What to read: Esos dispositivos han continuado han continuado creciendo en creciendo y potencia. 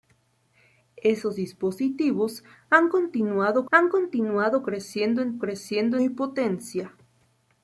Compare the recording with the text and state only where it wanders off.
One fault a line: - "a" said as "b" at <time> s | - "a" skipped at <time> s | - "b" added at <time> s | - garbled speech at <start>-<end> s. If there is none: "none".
none